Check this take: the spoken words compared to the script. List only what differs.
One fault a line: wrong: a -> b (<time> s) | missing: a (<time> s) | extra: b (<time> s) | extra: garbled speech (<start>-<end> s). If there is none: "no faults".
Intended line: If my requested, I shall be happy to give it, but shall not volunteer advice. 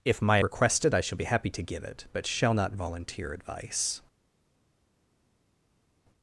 no faults